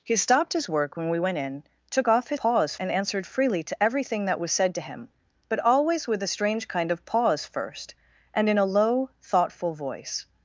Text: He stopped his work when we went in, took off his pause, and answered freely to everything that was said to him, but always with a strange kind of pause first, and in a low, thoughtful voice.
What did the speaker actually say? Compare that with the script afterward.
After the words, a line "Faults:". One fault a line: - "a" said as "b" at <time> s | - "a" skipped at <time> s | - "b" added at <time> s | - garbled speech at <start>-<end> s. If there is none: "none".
He stopped his work when we went in, took off his pause, and answered freely to everything that was said to him, but always with a strange kind of pause first, and in a low, thoughtful voice.
Faults:
none